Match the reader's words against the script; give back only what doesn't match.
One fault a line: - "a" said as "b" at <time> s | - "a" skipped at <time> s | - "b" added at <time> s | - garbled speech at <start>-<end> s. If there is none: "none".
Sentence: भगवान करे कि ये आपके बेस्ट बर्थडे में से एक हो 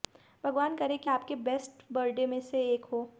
- "ये" skipped at 1.1 s